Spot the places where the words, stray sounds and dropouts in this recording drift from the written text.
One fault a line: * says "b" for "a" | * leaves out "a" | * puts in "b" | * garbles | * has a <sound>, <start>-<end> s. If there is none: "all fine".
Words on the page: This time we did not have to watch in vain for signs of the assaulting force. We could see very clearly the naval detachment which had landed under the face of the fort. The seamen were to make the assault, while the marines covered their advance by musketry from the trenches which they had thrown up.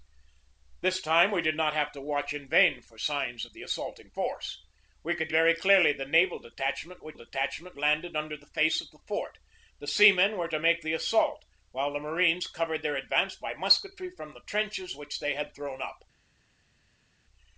* leaves out "see"
* says "detachment" for "had"